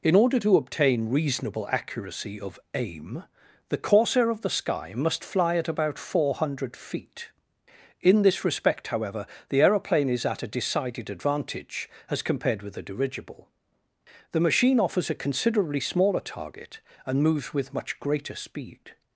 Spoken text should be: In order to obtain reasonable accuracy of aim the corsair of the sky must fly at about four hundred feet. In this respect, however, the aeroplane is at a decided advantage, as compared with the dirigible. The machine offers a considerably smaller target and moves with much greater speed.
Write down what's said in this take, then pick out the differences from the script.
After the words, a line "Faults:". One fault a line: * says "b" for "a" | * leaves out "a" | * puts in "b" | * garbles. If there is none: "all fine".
In order to obtain reasonable accuracy of aim the corsair of the sky must fly at about four hundred feet. In this respect, however, the aeroplane is at a decided advantage, as compared with the dirigible. The machine offers a considerably smaller target and moves with much greater speed.
Faults:
all fine